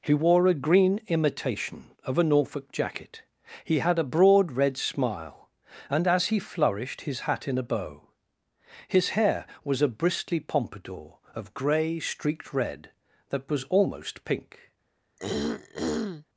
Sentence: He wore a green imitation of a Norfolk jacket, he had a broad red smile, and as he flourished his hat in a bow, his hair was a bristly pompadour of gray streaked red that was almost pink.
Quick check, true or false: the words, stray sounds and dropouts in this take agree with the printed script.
false